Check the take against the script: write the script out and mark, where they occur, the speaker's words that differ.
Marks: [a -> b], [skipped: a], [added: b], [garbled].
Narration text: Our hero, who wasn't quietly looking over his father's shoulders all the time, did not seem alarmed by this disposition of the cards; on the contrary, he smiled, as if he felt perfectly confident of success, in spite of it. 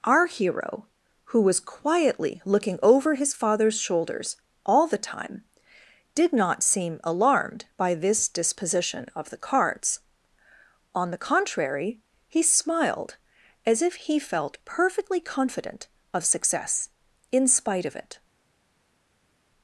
Our hero, who [wasn't -> was] quietly looking over his father's shoulders all the time, did not seem alarmed by this disposition of the cards; on the contrary, he smiled, as if he felt perfectly confident of success, in spite of it.